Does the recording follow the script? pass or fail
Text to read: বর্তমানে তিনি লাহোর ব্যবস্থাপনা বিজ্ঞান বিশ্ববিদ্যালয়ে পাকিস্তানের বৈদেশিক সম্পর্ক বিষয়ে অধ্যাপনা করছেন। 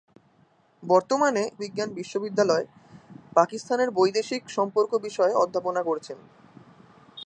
fail